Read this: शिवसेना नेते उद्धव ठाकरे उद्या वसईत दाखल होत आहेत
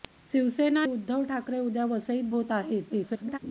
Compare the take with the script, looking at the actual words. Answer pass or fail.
fail